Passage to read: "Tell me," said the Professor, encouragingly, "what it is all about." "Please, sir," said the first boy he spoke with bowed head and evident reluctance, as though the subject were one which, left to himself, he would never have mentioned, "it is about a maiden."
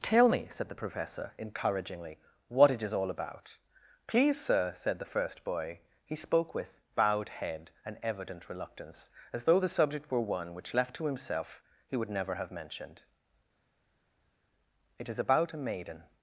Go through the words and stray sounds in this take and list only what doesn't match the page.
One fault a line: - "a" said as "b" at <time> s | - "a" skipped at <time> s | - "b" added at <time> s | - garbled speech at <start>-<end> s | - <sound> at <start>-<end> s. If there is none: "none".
none